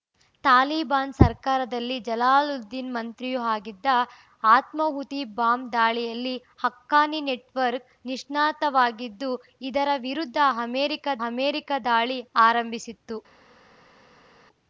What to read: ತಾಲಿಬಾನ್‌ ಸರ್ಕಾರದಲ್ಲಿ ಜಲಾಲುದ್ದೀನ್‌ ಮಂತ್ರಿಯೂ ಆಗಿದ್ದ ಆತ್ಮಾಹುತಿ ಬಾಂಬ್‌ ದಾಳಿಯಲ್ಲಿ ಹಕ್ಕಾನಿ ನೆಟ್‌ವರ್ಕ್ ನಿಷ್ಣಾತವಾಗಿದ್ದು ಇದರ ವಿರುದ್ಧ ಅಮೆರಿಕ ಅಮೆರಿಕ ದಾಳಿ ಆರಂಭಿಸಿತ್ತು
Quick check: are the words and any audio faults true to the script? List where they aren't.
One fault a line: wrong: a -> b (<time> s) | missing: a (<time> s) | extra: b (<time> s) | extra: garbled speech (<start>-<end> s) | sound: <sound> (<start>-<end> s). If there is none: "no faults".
no faults